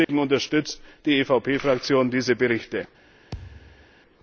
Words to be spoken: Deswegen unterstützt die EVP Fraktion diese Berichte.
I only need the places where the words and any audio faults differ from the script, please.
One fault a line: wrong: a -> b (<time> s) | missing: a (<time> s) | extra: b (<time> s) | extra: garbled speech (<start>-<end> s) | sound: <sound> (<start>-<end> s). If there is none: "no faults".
sound: dropout (0.0-0.1 s)
sound: thud (3.3-3.9 s)